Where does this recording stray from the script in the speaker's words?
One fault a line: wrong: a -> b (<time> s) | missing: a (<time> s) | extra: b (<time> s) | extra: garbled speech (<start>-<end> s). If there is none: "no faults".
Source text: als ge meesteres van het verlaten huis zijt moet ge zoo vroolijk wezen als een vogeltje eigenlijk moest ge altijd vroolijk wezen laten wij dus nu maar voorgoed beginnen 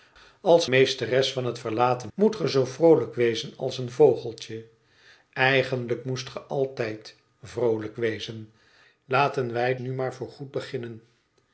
missing: ge (0.7 s)
missing: huis zijt (2.1 s)
missing: dus (9.7 s)